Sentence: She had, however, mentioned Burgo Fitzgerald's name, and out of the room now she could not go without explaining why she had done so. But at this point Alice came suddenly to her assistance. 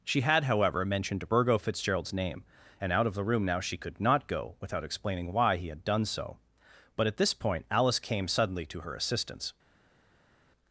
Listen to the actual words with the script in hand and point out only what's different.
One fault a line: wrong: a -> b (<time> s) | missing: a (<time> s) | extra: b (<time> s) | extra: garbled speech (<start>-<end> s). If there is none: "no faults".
wrong: she -> he (5.6 s)